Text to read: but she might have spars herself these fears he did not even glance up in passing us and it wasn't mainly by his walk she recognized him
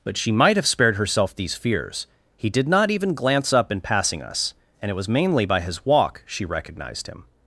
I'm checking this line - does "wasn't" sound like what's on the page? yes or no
no